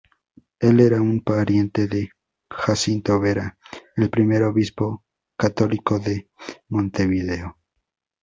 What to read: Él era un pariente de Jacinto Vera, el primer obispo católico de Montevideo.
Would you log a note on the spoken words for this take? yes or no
no